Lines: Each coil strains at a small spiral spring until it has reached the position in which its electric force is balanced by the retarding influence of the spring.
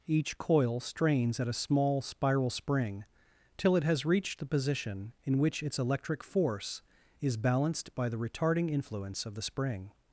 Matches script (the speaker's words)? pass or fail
fail